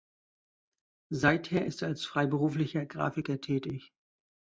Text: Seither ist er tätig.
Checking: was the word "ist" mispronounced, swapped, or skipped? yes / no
no